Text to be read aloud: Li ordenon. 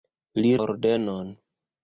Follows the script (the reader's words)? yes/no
yes